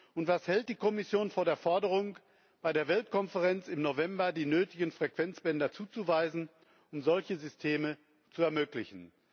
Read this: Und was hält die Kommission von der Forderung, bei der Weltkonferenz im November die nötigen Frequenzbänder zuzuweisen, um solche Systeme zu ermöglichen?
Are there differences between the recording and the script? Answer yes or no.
no